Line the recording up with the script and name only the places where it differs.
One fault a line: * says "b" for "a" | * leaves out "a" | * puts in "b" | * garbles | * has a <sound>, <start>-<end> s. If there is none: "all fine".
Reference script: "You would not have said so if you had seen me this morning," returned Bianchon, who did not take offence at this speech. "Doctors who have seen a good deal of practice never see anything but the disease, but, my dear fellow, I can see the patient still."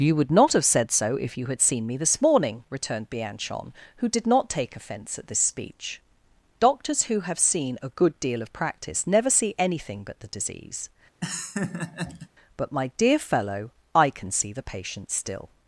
* has a laugh, 11.2-12.3 s